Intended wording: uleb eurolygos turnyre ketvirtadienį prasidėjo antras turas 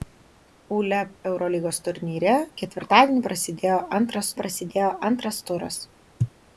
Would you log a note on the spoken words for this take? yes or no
yes